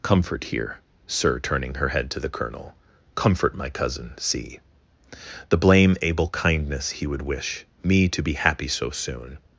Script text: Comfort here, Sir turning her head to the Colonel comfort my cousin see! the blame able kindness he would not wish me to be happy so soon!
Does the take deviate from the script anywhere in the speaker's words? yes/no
yes